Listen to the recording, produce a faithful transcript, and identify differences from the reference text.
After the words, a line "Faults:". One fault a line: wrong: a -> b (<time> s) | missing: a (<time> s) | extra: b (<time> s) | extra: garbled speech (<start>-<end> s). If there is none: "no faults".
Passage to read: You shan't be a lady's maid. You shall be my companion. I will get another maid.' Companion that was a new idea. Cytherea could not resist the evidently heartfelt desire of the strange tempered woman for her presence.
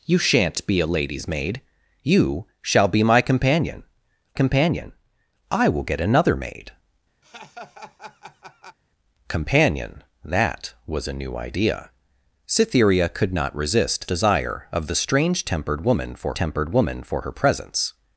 You shan't be a lady's maid. You shall be my companion companion. I will get another maid.' Companion that was a new idea. Cytherea could not resist desire of the strange tempered woman for tempered woman for her presence.
Faults:
extra: companion (4.3 s)
missing: the evidently heartfelt (14.1 s)
extra: tempered woman for (16.3 s)